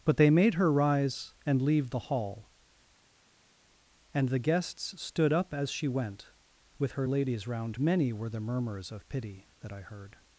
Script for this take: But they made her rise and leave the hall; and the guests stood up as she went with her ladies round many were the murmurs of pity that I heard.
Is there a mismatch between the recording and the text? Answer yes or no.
no